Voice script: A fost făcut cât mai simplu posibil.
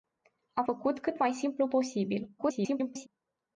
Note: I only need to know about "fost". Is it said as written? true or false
false